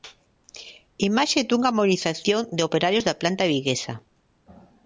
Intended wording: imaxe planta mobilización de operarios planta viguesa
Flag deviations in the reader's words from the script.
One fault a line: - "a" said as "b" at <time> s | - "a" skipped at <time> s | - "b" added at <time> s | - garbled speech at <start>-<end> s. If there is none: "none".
- "planta" said as "dunha" at 1.5 s
- "da" added at 3.1 s